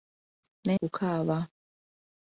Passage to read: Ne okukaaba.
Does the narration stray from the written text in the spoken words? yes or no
no